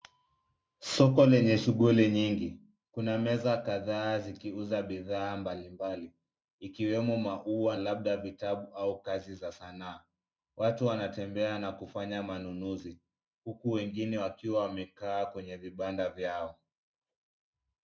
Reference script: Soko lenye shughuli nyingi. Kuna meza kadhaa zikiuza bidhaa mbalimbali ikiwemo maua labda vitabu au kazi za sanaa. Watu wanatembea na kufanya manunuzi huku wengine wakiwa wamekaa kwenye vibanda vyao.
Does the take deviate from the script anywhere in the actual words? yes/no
no